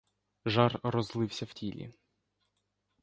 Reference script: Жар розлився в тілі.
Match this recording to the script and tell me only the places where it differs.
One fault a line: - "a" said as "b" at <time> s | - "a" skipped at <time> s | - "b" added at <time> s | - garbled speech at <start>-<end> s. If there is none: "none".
none